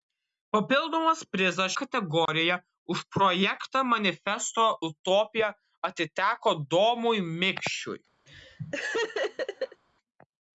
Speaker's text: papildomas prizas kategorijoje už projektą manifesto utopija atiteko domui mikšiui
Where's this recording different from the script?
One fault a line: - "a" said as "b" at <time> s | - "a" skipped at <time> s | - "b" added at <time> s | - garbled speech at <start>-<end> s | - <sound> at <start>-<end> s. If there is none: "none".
- dropout at 2.3-2.3 s
- laugh at 8.3-9.8 s